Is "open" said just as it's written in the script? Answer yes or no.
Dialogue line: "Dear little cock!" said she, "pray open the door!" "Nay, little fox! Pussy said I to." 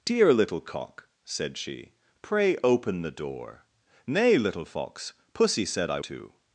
yes